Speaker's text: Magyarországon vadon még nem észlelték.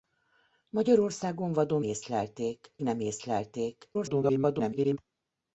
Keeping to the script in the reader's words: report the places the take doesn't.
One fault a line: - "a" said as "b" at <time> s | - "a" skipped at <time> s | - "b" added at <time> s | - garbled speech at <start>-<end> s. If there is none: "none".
- "még" said as "észlelték" at 1.8 s
- garbled speech at 3.9-5.0 s